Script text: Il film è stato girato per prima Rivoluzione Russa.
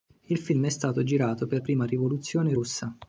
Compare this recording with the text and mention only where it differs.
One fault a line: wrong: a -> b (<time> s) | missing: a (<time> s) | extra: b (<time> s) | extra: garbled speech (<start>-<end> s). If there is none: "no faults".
no faults